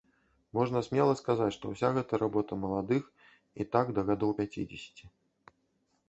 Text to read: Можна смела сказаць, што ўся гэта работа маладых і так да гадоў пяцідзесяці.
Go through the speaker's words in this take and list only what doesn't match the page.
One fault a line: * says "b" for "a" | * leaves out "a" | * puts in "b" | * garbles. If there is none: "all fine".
all fine